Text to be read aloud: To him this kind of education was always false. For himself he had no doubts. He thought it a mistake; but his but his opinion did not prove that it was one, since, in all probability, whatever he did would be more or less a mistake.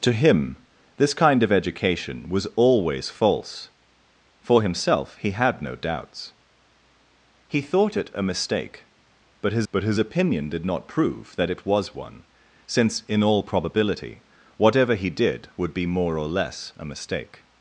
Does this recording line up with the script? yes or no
yes